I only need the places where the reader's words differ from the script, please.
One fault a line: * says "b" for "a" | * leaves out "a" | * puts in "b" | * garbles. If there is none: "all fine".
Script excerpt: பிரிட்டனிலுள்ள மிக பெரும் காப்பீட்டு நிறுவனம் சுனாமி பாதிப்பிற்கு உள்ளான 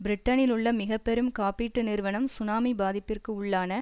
all fine